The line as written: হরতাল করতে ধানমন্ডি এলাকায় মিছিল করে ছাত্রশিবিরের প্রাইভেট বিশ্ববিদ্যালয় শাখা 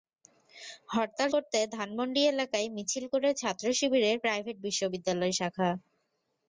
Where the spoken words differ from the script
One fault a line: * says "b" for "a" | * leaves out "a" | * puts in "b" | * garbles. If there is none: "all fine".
all fine